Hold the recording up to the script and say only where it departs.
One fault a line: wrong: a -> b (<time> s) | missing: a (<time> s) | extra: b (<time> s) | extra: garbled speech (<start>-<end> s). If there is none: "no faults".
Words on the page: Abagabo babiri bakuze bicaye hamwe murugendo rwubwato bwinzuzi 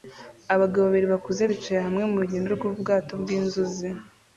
no faults